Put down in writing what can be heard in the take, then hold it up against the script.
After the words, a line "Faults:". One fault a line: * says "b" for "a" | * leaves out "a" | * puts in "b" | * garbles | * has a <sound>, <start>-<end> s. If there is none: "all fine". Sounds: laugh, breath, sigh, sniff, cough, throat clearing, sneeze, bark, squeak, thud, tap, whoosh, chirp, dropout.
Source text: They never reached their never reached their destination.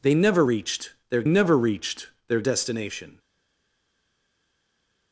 They never reached their never reached their destination.
Faults:
all fine